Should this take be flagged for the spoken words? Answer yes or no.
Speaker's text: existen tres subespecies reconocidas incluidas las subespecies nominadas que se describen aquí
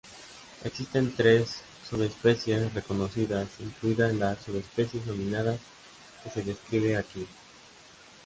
no